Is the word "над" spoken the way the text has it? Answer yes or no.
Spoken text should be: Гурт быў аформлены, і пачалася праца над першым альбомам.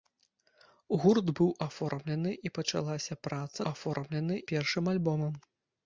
no